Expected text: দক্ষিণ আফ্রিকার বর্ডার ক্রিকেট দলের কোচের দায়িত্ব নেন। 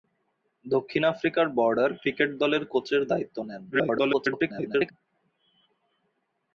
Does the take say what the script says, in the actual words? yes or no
no